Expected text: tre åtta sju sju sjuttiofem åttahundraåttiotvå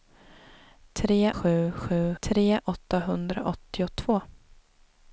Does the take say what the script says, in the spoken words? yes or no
no